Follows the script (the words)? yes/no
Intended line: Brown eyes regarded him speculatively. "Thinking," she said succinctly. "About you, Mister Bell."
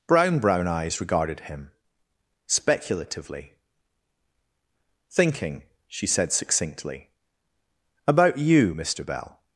no